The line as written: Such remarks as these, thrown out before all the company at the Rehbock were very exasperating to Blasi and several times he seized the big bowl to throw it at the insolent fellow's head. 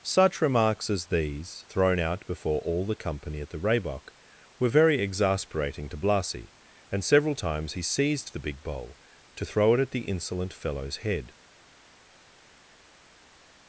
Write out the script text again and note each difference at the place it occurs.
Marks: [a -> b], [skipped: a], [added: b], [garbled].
Such remarks as these, thrown out before all the company at the Rehbock were very exasperating to Blasi and several times he seized the big bowl to throw it at the insolent fellow's head.